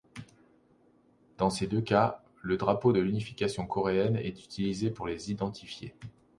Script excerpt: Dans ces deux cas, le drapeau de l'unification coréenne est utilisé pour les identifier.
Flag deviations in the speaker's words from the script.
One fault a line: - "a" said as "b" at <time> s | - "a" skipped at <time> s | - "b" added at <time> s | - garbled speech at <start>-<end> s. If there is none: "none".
none